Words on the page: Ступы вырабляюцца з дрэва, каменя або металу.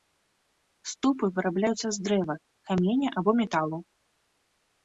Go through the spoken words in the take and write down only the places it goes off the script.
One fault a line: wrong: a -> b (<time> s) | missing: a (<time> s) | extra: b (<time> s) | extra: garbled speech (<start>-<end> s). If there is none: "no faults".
no faults